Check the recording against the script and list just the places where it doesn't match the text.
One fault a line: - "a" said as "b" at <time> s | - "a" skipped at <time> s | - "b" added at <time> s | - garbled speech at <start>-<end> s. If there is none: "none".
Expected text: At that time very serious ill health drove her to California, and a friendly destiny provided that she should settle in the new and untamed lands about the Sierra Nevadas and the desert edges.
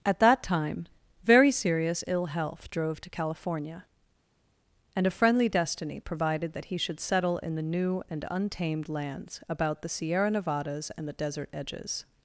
- "her" skipped at 3.0 s
- "she" said as "he" at 6.7 s